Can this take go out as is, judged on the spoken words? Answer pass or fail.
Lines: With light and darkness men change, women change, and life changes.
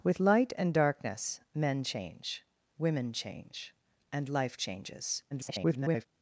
fail